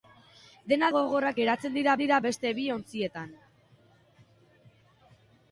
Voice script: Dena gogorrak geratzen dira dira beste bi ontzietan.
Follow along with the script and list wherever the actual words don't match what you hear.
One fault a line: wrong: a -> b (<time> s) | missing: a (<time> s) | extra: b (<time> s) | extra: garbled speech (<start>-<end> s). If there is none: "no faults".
no faults